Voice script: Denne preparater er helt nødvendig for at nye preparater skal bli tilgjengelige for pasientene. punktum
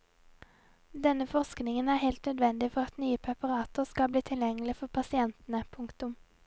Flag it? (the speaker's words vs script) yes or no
yes